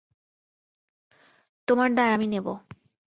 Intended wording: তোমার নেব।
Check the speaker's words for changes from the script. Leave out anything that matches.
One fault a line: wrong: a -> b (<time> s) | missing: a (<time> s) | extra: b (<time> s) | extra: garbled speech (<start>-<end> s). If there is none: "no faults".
extra: দায় আমি (1.9 s)